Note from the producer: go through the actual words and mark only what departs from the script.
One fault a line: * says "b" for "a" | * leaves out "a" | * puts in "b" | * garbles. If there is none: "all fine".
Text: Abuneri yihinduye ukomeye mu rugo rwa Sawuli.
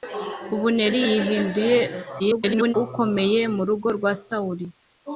* garbles